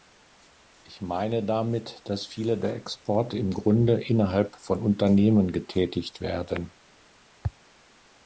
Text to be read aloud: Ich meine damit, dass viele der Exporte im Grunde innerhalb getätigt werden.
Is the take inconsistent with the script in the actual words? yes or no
yes